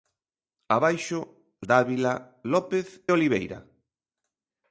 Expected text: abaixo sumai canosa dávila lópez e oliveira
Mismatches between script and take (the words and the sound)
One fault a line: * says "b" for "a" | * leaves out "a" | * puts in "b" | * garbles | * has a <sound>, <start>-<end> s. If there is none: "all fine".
* leaves out "sumai canosa"
* leaves out "e"